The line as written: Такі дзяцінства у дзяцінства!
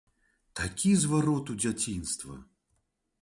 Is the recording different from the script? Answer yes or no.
yes